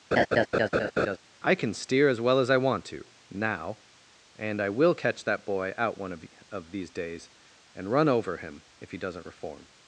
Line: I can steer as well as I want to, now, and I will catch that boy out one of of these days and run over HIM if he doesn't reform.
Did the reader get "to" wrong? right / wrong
right